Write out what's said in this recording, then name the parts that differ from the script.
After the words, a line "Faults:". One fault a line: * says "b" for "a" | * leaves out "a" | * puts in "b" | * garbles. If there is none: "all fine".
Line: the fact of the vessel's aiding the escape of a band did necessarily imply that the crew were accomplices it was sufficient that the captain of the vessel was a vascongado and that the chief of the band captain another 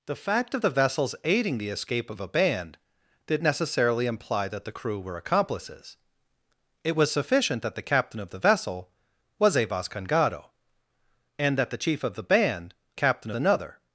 the fact of the vessel's aiding the escape of a band did necessarily imply that the crew were accomplices it was sufficient that the captain of the vessel was a vascongado and that the chief of the band captain another
Faults:
all fine